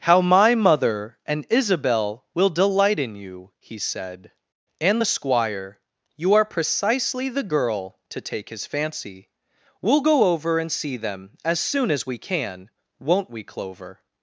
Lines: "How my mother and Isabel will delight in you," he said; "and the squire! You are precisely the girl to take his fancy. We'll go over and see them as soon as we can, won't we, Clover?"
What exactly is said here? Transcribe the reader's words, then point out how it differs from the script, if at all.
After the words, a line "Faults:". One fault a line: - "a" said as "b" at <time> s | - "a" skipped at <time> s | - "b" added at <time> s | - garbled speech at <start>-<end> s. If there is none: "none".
"How my mother and Isabel will delight in you," he said; "and the squire! You are precisely the girl to take his fancy. We'll go over and see them as soon as we can, won't we, Clover?"
Faults:
none